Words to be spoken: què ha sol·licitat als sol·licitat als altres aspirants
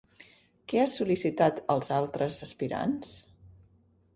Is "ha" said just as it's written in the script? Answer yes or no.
yes